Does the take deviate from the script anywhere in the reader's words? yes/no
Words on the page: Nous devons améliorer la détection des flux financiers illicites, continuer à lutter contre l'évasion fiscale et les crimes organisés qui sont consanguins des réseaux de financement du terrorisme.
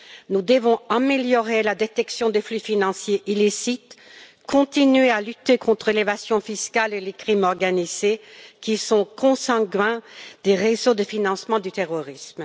no